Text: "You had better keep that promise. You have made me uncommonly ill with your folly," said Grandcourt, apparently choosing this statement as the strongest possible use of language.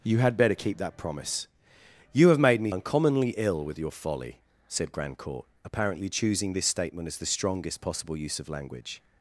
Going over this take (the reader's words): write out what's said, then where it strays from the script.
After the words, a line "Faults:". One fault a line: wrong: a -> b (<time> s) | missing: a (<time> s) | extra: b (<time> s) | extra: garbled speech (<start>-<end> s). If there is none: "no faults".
"You had better keep that promise. You have made me uncommonly ill with your folly," said Grandcourt, apparently choosing this statement as the strongest possible use of language.
Faults:
no faults